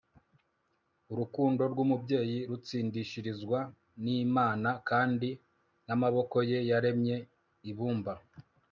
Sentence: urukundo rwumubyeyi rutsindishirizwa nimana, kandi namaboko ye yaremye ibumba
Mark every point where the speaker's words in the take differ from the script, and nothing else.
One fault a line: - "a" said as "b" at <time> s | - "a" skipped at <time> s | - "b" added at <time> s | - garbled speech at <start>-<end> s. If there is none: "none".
none